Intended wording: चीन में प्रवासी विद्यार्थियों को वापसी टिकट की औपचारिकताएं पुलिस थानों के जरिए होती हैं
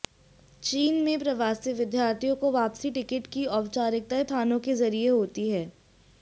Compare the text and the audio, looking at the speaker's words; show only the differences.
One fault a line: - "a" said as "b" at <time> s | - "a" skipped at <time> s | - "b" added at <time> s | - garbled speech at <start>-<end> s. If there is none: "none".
- "पुलिस" skipped at 4.2 s